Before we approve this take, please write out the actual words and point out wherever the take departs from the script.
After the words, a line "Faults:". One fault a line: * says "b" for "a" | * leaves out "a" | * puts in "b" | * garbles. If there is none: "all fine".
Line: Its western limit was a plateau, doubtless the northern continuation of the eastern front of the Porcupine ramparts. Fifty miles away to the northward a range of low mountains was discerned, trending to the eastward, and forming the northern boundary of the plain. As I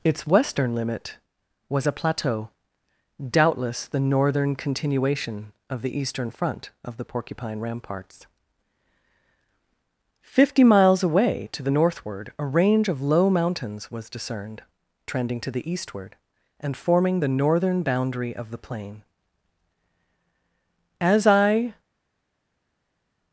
Its western limit was a plateau, doubtless the northern continuation of the eastern front of the Porcupine ramparts. Fifty miles away to the northward a range of low mountains was discerned, trending to the eastward, and forming the northern boundary of the plain. As I
Faults:
all fine